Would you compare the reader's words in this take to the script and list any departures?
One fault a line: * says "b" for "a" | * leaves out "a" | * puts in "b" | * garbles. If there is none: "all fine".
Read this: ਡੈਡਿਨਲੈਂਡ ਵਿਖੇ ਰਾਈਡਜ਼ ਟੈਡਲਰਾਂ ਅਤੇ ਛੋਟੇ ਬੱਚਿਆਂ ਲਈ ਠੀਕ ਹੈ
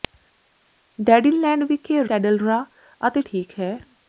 * leaves out "ਰਾਈਡਜ਼"
* leaves out "ਛੋਟੇ ਬੱਚਿਆਂ ਲਈ"